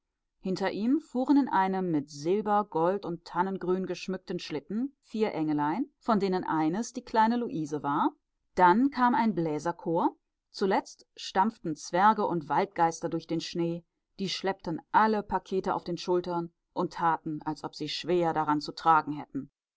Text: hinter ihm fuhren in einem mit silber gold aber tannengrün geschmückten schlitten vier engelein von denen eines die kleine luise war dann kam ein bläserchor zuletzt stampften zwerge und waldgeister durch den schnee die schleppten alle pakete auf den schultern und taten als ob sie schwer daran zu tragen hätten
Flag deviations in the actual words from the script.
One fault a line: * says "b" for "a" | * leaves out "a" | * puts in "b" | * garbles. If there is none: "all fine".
* says "und" for "aber"